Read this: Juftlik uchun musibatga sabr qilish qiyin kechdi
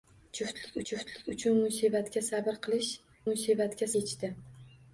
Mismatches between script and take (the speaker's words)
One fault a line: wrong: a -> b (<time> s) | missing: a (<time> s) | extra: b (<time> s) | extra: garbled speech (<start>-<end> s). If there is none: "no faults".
extra: juftlik (0.9 s)
wrong: qiyin -> musibatga (3.3 s)